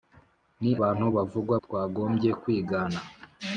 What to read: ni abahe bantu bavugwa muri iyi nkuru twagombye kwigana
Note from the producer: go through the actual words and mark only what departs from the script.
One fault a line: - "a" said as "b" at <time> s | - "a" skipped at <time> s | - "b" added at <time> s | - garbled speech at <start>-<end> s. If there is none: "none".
- "abahe" skipped at 0.7 s
- "muri iyi nkuru" skipped at 1.6 s